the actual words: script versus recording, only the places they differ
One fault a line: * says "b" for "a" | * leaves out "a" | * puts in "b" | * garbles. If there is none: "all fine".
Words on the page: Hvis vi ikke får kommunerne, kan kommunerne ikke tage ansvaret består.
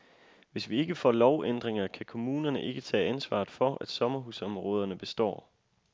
* says "lovændringer" for "kommunerne"
* puts in "for at sommerhusområderne"